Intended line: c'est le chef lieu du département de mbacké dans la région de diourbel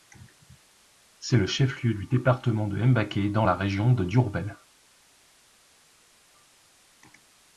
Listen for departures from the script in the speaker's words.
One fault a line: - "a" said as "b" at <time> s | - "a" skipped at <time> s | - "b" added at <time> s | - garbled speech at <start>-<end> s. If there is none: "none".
none